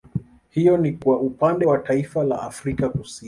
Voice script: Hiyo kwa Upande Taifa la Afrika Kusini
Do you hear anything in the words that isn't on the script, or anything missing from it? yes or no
yes